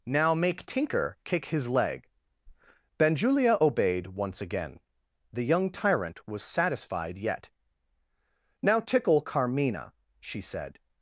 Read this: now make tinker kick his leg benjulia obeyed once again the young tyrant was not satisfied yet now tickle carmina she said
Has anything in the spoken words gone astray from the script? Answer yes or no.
yes